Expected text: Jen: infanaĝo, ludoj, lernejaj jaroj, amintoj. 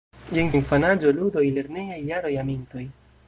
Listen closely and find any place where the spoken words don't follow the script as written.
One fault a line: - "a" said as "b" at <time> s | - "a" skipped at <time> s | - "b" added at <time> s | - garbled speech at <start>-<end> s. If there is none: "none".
none